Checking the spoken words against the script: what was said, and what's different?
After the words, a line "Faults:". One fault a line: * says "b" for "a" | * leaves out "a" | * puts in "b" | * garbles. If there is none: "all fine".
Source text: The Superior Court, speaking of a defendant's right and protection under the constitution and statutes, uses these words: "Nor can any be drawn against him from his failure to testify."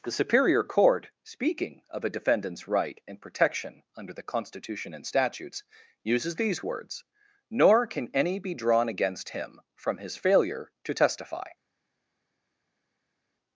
The Superior Court, speaking of a defendant's right and protection under the constitution and statutes, uses these words: "Nor can any be drawn against him from his failure to testify."
Faults:
all fine